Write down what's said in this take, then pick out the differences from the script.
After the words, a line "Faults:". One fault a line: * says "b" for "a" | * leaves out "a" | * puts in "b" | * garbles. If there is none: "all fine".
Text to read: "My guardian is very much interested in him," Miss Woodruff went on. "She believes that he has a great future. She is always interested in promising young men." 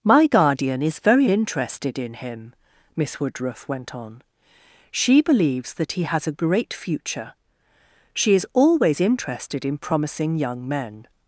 "My guardian is very interested in him," Miss Woodruff went on. "She believes that he has a great future. She is always interested in promising young men."
Faults:
* leaves out "much"